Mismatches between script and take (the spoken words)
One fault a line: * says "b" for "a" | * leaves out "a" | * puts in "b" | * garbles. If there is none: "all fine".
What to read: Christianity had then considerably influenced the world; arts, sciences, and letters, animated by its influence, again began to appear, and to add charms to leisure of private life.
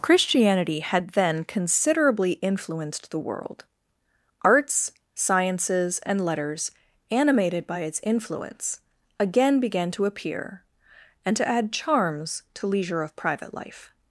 all fine